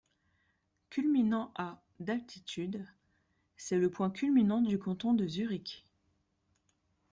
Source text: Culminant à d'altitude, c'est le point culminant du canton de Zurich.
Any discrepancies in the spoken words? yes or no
no